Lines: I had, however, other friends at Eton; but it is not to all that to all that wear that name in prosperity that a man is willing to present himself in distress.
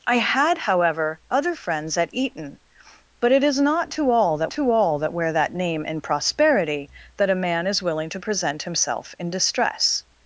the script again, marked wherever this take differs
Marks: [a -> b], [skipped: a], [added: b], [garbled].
I had, however, other friends at Eton; but it is not to all that to all that wear that name in prosperity that a man is willing to present himself in distress.